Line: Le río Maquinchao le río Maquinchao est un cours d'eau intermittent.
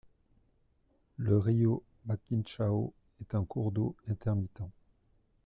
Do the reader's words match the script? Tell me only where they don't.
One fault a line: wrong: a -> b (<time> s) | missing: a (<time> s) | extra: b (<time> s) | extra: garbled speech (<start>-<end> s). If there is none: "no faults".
missing: le río Maquinchao (2.9 s)